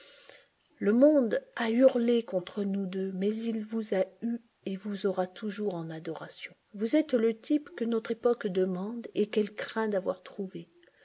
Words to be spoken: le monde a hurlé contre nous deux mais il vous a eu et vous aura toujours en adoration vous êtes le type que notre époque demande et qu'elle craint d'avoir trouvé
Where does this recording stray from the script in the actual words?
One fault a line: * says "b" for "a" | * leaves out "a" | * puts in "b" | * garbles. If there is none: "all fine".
all fine